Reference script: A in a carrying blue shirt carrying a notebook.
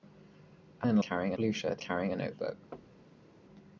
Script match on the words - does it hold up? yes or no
yes